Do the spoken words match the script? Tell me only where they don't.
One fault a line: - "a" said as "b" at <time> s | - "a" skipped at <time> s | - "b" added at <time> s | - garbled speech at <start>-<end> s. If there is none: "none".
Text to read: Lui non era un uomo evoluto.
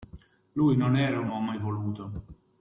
none